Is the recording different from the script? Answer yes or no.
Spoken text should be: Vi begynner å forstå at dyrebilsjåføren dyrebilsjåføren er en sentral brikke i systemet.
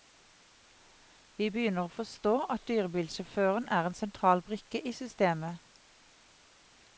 yes